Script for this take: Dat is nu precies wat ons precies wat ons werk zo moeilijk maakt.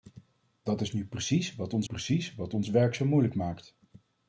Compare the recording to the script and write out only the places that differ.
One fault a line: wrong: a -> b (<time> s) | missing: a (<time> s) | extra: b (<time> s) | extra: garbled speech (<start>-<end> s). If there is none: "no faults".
no faults